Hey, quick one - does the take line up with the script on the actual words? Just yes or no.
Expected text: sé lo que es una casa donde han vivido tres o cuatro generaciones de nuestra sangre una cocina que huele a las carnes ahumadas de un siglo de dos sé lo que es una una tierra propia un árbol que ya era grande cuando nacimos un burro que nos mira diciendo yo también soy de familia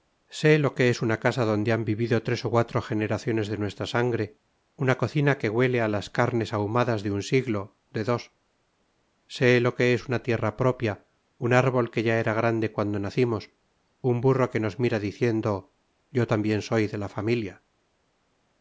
no